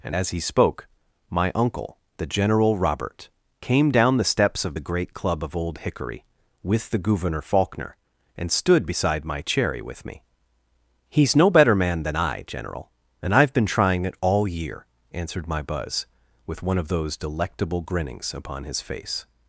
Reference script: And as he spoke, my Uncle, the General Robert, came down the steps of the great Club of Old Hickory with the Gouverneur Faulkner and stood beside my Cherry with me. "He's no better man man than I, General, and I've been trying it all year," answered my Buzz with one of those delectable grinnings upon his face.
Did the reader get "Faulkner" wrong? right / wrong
right